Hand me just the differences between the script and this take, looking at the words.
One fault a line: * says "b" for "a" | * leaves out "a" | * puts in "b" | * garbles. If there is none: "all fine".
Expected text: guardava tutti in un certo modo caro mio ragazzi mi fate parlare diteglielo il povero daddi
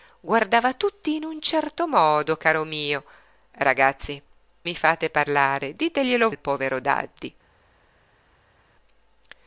all fine